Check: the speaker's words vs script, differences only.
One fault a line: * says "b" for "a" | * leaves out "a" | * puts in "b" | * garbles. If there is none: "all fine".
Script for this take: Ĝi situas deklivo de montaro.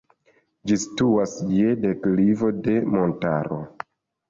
* puts in "je"